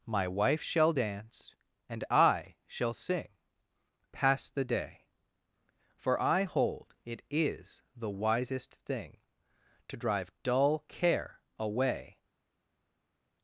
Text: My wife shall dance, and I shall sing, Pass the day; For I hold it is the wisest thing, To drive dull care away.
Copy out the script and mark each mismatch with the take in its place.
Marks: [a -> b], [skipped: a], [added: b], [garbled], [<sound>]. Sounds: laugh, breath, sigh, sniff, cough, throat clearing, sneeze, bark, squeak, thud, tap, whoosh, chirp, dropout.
My wife shall dance, and I shall sing, Pass the day; For I hold it is the wisest thing, To drive dull care away.